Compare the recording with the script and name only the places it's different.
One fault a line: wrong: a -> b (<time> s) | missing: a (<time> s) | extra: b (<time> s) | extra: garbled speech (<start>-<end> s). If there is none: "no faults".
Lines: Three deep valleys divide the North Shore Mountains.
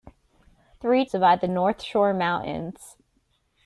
missing: deep valleys (1.1 s)